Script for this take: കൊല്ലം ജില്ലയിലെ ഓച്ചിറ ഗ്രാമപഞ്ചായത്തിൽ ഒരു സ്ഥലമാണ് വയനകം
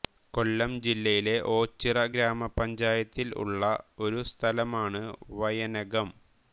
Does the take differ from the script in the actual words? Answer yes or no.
yes